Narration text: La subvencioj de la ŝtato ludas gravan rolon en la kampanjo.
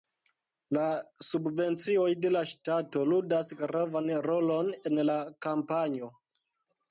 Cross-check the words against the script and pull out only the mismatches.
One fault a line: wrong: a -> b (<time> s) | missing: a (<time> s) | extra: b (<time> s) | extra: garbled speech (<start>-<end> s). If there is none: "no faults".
no faults